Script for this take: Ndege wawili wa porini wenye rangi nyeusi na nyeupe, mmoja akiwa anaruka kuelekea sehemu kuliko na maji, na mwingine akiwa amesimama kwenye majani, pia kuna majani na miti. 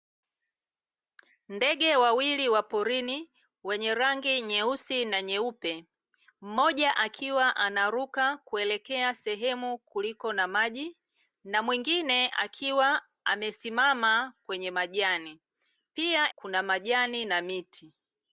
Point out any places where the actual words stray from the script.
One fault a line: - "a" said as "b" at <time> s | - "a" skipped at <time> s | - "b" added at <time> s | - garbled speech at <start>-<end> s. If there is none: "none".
none